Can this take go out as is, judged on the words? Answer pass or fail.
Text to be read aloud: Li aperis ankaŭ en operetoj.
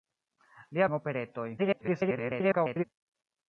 fail